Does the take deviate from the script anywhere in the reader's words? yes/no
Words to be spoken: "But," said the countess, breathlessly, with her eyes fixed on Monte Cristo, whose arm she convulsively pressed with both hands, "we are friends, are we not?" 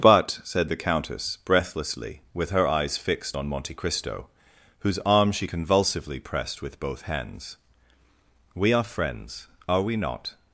no